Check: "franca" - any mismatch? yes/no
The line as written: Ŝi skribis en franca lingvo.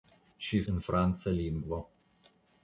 no